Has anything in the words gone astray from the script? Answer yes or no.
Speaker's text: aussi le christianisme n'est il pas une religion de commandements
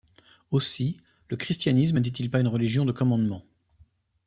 no